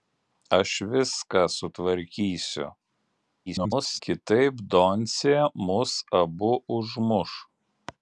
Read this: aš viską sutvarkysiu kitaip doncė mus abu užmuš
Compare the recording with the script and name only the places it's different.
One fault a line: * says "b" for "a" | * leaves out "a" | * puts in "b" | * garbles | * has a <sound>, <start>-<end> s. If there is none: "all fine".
* garbles